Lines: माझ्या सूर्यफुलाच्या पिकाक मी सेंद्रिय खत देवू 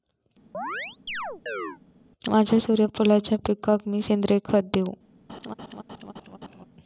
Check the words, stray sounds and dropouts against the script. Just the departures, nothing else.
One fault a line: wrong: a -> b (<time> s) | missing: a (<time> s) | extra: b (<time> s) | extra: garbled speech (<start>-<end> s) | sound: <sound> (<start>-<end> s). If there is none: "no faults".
sound: chirp (0.5-1.8 s)
sound: laugh (5.3-6.7 s)